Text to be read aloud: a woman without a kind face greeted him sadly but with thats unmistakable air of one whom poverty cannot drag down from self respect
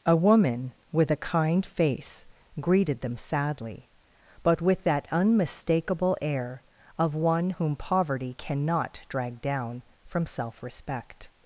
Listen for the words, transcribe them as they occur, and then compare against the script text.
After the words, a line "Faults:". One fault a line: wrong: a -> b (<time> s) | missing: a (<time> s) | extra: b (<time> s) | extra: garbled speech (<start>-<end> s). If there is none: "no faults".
a woman with a kind face greeted them sadly but with that unmistakable air of one whom poverty cannot drag down from self respect
Faults:
wrong: without -> with (0.9 s)
wrong: him -> them (3.0 s)
wrong: thats -> that (4.8 s)